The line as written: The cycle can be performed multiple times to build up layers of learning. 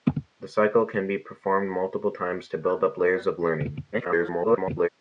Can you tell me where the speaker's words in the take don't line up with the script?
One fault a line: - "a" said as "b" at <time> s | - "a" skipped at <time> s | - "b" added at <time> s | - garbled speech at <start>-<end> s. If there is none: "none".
- garbled speech at 3.9-4.9 s